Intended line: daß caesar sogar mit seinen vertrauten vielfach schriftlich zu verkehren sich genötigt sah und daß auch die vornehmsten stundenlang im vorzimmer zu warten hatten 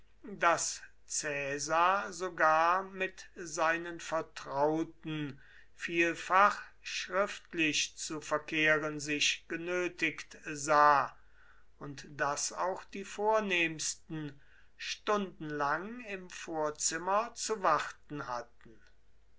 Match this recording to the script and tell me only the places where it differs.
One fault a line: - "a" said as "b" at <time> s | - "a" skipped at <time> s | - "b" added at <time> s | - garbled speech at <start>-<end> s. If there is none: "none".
none